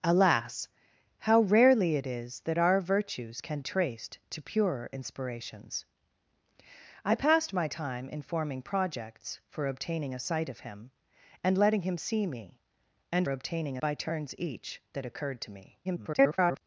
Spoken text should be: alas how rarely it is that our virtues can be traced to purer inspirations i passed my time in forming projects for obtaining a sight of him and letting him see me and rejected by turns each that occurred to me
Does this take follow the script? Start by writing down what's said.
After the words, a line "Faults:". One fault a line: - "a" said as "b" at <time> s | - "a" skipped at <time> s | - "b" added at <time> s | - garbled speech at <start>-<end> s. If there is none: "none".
alas how rarely it is that our virtues can traced to purer inspirations i passed my time in forming projects for obtaining a sight of him and letting him see me and obtaining by turns each that occurred to me [garbled]
Faults:
- "be" skipped at 3.6 s
- "rejected" said as "obtaining" at 13.3 s
- garbled speech at 15.8-16.6 s